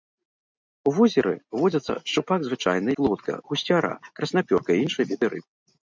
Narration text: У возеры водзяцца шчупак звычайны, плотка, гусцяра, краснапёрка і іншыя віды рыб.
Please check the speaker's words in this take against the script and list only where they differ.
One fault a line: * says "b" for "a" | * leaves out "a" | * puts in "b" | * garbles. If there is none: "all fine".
all fine